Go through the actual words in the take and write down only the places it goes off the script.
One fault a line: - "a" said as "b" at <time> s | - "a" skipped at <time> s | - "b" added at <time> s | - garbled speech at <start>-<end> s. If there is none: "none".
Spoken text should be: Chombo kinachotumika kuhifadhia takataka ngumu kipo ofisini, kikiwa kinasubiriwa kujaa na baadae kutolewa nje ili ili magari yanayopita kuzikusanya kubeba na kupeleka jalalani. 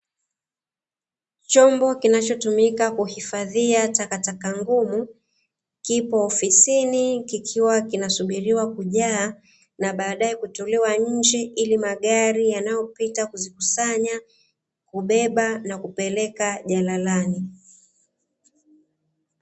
- "ili" skipped at 11.8 s